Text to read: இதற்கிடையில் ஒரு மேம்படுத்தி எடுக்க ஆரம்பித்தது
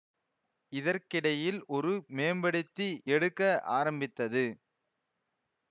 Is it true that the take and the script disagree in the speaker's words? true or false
false